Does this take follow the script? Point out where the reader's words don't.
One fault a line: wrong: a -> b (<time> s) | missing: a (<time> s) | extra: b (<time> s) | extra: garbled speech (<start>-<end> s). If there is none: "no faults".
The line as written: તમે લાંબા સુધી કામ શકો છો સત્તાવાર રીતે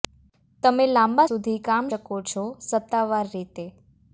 no faults